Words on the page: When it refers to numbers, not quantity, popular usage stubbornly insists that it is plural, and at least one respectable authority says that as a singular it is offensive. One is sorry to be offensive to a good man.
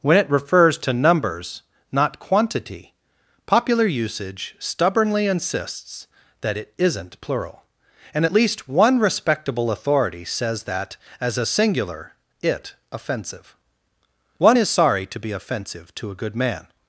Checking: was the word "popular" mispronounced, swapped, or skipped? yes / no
no